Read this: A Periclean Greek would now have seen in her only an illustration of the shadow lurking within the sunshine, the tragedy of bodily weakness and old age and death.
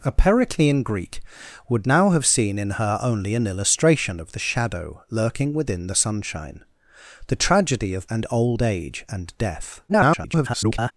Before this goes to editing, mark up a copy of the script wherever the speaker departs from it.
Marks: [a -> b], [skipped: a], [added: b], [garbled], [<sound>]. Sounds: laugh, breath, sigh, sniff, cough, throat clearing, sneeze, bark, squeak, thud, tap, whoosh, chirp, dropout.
A Periclean Greek would now have seen in her only an illustration of the shadow lurking within the sunshine, the tragedy of [skipped: bodily weakness] and old age and death. [garbled]